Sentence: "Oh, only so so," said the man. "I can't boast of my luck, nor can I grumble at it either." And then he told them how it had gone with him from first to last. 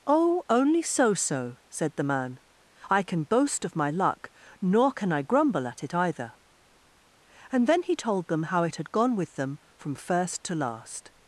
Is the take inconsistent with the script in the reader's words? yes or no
yes